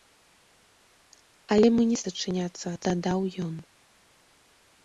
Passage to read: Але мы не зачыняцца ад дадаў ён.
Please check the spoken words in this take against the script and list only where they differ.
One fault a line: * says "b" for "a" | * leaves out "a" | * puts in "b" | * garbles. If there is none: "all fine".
all fine